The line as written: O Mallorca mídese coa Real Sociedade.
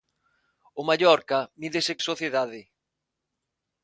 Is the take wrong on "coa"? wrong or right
wrong